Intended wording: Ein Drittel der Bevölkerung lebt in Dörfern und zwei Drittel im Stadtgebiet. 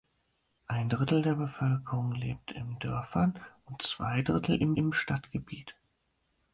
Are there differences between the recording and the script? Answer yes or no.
yes